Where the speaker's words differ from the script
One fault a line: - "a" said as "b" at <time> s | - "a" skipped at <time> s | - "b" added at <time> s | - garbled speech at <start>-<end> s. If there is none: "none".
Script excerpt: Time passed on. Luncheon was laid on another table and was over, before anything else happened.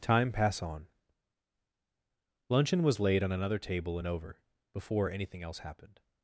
- "passed" said as "pass" at 0.3 s
- "was" skipped at 4.1 s